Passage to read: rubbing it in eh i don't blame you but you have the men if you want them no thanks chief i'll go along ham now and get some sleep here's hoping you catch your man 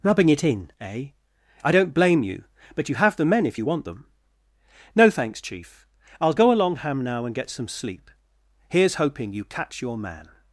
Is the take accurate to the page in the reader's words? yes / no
yes